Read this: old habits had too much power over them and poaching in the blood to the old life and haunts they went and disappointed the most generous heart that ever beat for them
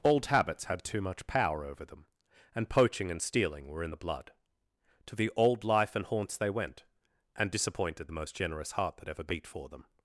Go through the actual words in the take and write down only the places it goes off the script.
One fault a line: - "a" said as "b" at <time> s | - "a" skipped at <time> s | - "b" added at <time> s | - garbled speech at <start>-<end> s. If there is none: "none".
- "and stealing were" added at 3.1 s